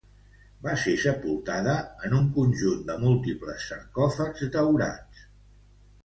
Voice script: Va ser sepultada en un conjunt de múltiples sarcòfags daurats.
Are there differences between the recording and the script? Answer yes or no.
no